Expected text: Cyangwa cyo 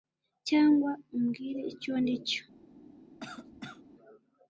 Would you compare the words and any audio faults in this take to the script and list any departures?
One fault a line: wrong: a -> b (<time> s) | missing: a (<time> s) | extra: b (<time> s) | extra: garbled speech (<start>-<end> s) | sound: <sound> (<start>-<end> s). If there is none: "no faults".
extra: umbwire icyo ndi (1.1 s)
sound: cough (3.2-3.8 s)